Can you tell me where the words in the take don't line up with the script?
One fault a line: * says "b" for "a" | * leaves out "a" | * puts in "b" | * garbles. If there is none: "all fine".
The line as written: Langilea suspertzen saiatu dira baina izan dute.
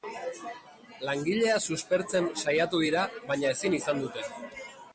* puts in "ezin"